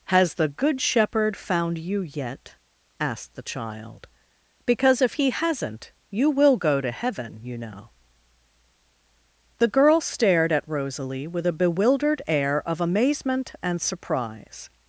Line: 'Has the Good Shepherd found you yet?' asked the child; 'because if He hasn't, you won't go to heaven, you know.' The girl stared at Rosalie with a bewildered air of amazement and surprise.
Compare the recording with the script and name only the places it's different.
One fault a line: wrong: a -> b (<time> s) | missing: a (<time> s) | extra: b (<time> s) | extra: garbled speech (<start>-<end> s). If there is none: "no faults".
wrong: won't -> will (6.3 s)